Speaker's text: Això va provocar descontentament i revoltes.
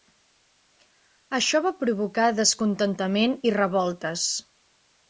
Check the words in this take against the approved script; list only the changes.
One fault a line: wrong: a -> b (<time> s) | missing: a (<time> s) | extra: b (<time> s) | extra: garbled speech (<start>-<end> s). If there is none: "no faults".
no faults